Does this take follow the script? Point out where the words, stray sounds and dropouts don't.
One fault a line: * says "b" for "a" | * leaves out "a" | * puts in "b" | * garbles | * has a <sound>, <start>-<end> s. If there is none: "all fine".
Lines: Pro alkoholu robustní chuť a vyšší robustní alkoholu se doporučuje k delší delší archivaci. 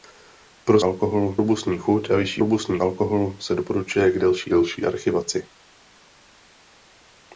all fine